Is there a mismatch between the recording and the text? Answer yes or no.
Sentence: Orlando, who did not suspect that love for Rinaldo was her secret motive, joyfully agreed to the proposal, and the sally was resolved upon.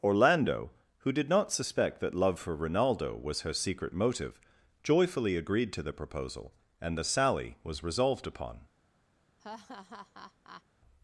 no